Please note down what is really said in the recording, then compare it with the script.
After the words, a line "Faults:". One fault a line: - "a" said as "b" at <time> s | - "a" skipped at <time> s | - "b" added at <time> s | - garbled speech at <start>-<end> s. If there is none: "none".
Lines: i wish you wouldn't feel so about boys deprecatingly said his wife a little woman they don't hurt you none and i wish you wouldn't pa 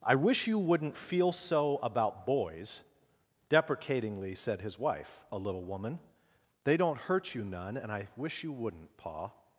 i wish you wouldn't feel so about boys deprecatingly said his wife a little woman they don't hurt you none and i wish you wouldn't pa
Faults:
none